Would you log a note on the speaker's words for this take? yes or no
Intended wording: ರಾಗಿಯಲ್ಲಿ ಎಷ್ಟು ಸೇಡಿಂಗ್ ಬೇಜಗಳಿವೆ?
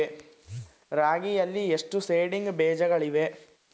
no